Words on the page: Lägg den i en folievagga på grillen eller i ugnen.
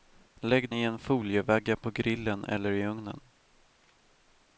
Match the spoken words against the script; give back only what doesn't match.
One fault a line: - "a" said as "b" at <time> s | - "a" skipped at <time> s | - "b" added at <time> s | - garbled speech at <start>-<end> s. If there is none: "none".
- "den" skipped at 0.7 s